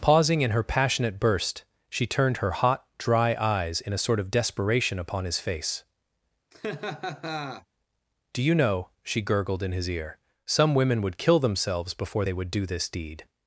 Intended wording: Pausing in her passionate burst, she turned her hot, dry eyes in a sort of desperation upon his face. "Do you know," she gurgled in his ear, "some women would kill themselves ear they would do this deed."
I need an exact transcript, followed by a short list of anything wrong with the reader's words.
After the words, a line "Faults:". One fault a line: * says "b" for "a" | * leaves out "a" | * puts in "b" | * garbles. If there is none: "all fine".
Pausing in her passionate burst, she turned her hot, dry eyes in a sort of desperation upon his face. "Do you know," she gurgled in his ear, "some women would kill themselves before they would do this deed."
Faults:
* says "before" for "ear"